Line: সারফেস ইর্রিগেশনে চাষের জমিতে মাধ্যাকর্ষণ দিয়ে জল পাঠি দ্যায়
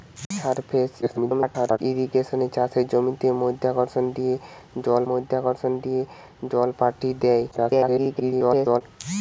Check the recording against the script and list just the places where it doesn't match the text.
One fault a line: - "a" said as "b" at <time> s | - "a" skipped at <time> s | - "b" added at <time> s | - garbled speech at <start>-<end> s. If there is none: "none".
- garbled speech at 1.0-1.8 s
- "মাধ্যাকর্ষণ দিয়ে জল" added at 5.1 s
- garbled speech at 7.5-8.8 s